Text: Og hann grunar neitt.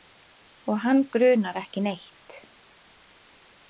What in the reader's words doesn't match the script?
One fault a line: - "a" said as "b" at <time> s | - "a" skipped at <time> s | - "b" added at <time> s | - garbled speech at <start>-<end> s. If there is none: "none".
- "ekki" added at 1.6 s